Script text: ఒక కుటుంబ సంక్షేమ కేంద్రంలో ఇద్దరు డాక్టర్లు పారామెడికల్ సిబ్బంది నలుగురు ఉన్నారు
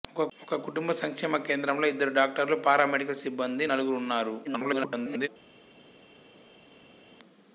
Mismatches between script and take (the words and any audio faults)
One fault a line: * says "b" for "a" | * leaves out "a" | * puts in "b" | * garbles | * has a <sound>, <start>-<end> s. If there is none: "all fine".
* garbles